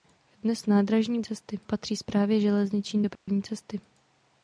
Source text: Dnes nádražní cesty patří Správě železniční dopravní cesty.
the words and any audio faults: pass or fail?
fail